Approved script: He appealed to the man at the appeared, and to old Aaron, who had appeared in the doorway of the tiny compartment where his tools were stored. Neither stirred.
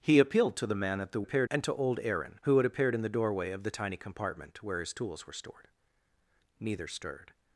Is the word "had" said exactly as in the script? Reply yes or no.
yes